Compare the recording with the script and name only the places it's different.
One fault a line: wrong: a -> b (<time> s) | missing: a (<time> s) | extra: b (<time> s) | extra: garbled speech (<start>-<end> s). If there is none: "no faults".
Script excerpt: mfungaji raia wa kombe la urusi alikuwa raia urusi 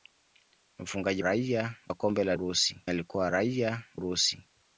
no faults